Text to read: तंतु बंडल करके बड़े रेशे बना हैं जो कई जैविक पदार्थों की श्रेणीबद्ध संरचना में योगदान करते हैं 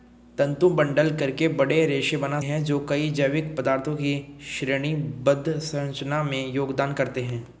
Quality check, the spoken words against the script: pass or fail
pass